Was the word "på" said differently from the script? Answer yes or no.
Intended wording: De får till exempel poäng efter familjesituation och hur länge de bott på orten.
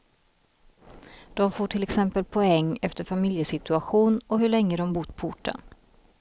no